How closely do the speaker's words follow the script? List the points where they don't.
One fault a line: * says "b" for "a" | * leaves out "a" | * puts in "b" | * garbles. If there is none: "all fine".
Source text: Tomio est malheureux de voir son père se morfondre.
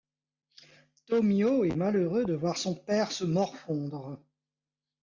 all fine